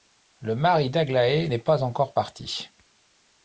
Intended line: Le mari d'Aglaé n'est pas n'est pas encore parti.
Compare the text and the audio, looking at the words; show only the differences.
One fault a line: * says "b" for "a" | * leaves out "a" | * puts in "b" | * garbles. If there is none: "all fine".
* leaves out "n'est pas"